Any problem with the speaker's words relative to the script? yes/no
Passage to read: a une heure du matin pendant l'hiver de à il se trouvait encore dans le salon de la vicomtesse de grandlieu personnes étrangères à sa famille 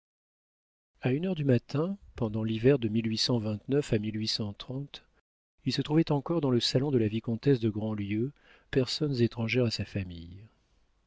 no